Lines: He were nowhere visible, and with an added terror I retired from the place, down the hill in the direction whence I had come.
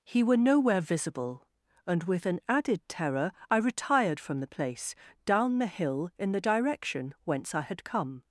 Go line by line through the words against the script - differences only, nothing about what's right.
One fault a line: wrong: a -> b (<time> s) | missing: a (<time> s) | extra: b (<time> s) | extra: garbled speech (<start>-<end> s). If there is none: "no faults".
no faults